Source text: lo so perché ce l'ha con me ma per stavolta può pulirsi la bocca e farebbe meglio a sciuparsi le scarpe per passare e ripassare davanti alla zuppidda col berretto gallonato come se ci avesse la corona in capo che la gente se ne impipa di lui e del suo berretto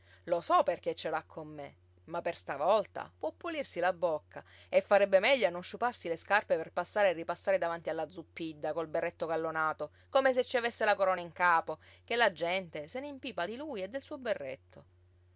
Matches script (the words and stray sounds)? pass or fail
fail